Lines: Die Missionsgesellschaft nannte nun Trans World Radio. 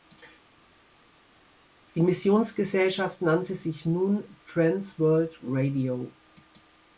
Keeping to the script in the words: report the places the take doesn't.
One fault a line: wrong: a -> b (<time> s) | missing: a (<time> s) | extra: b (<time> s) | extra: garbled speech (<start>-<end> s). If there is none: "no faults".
extra: sich (3.6 s)